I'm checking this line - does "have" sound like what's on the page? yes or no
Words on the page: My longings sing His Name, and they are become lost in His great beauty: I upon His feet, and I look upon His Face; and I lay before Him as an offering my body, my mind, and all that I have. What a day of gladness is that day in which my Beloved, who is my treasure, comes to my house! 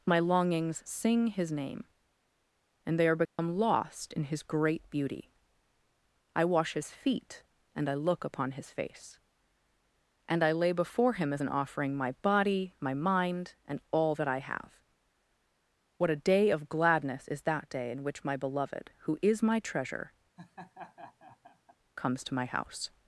yes